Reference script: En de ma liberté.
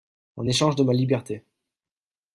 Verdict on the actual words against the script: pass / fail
fail